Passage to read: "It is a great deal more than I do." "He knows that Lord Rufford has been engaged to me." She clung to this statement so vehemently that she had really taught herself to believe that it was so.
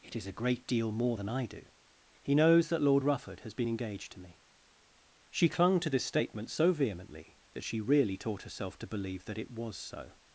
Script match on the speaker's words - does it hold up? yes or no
no